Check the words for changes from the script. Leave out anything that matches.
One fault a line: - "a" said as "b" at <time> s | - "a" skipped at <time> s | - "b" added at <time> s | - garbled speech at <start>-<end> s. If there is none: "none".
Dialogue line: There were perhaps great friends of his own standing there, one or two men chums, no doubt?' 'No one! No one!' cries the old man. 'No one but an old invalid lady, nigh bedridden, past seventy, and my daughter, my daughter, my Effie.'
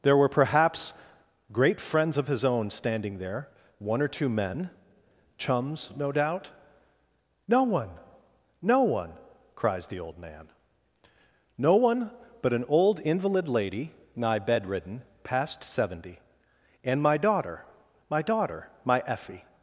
none